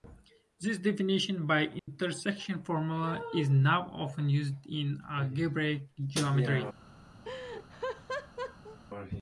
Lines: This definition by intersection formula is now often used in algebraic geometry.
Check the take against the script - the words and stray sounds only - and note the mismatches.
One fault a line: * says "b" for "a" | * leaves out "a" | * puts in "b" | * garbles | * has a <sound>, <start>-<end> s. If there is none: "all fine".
* has a dropout, 1.8-1.9 s
* has a laugh, 7.2-8.8 s